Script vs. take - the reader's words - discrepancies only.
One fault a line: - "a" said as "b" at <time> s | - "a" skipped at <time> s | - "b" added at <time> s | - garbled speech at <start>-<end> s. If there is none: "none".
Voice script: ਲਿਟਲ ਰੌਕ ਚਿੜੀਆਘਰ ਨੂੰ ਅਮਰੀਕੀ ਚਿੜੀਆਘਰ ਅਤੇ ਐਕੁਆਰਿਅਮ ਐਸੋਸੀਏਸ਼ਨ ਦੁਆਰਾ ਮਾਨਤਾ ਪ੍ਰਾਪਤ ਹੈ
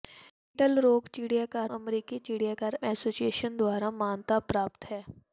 - "ਨੂੰ" skipped at 1.7 s
- "ਅਤੇ ਐਕੁਆਰਿਅਮ" skipped at 2.8 s